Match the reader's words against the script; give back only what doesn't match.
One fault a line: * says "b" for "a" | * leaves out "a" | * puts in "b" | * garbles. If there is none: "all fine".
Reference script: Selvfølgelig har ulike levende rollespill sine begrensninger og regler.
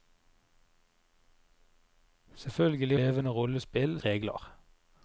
* leaves out "har ulike"
* leaves out "sine begrensninger og"